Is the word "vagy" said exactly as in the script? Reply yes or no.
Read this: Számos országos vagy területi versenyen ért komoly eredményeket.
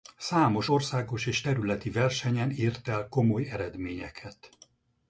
no